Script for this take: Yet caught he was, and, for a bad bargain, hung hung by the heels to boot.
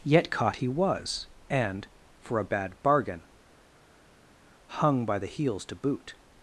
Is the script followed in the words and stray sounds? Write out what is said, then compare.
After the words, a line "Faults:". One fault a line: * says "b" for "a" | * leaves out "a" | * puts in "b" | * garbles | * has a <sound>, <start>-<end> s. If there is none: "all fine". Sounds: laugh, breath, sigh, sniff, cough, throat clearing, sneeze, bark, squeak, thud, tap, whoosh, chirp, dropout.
Yet caught he was, and, for a bad bargain, hung by the heels to boot.
Faults:
* leaves out "hung"